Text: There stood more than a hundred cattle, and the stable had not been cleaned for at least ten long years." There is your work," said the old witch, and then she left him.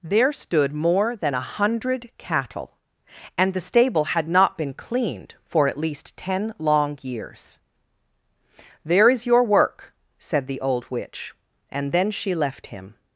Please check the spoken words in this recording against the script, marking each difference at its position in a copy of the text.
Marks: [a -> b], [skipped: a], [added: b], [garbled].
There stood more than a hundred cattle, and the stable had not been cleaned for at least ten long years." There is your work," said the old witch, and then she left him.